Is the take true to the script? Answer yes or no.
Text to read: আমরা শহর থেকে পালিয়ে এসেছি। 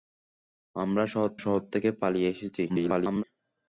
no